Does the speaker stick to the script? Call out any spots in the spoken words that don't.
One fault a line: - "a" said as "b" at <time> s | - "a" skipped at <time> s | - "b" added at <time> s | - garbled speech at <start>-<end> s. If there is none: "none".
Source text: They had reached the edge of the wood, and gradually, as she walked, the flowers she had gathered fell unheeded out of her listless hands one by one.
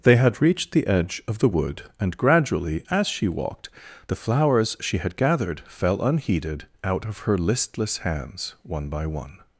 none